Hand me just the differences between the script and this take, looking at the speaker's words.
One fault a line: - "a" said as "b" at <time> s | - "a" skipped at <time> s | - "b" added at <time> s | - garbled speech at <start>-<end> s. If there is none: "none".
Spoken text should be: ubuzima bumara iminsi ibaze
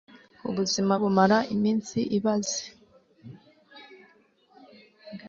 none